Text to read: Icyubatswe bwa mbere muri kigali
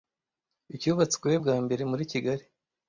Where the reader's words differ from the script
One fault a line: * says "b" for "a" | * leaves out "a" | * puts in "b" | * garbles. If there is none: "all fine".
all fine